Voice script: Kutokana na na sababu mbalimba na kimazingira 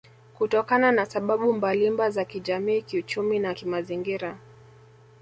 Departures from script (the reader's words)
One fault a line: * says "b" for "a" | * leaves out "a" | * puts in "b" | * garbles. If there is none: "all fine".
* leaves out "na"
* puts in "za kijamii kiuchumi"